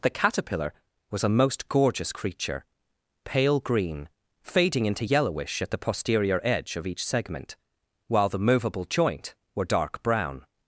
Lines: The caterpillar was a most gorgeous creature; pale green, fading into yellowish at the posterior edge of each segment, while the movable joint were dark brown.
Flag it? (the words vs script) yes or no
no